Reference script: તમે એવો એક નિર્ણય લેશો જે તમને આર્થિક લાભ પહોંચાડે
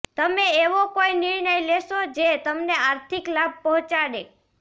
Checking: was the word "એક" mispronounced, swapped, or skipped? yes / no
yes